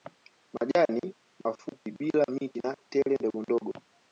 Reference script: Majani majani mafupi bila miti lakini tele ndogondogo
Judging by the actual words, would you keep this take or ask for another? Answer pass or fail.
fail